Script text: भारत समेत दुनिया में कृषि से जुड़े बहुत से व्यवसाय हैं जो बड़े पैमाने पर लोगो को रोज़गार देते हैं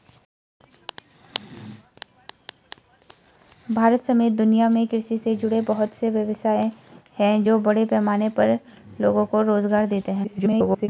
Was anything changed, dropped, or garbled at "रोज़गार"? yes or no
no